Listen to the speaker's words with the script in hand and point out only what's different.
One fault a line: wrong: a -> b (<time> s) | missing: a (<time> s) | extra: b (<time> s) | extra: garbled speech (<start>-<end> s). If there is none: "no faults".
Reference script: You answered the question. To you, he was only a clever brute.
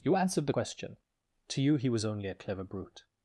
no faults